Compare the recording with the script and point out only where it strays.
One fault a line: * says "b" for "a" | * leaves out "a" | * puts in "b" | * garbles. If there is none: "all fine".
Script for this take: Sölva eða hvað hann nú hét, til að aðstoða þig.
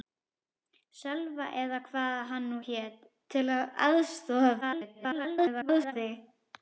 * garbles